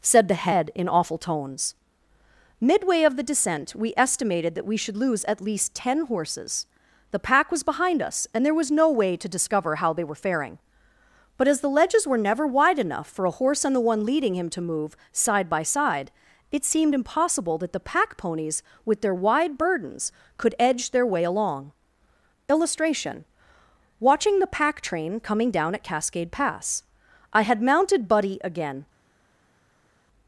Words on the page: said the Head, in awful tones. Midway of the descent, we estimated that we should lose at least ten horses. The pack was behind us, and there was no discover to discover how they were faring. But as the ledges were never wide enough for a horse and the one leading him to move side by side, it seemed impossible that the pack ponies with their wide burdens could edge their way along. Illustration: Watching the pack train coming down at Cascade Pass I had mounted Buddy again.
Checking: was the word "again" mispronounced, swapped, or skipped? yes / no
no